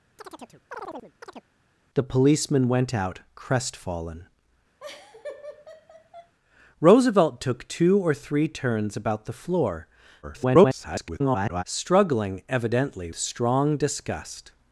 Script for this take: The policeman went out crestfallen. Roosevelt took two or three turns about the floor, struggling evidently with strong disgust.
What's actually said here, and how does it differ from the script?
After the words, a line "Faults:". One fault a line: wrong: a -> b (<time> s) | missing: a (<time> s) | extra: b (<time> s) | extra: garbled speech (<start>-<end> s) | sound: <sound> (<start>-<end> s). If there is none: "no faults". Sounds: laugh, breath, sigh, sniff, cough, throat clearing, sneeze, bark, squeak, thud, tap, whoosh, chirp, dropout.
The policeman went out crestfallen. Roosevelt took two or three turns about the floor, [garbled] struggling evidently strong disgust.
Faults:
sound: chirp (0.2-1.5 s)
sound: laugh (4.8-6.3 s)
extra: garbled speech (10.2-11.6 s)
missing: with (13.1 s)